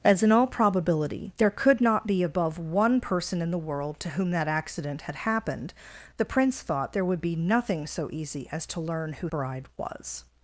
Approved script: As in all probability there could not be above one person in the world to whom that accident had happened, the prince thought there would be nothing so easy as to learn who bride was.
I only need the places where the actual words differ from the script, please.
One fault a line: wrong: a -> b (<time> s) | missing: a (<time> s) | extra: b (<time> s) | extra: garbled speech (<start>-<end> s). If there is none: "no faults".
no faults